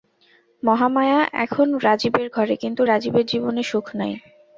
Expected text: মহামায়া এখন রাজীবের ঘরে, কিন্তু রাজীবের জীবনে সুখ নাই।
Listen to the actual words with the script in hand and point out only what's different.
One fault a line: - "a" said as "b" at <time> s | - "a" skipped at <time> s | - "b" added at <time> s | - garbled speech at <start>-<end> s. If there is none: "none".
none